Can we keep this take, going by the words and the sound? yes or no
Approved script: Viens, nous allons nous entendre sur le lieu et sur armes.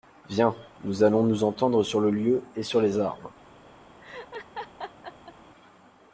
no